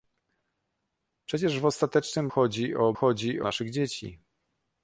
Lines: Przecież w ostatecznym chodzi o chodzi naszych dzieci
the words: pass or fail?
pass